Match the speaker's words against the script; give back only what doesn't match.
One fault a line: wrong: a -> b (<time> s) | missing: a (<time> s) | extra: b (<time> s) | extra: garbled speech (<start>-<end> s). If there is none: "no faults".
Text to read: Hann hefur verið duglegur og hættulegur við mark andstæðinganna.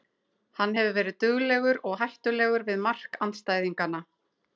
no faults